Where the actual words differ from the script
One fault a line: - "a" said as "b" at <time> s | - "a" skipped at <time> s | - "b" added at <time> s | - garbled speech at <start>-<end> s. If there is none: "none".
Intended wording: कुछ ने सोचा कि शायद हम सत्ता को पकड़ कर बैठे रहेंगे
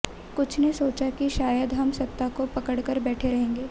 none